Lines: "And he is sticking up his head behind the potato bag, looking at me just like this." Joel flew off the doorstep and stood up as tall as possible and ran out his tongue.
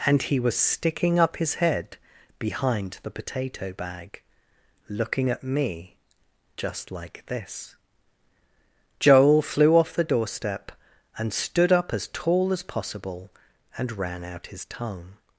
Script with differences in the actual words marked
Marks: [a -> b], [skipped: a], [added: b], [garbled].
"And he [is -> was] sticking up his head behind the potato bag, looking at me just like this." Joel flew off the doorstep and stood up as tall as possible and ran out his tongue.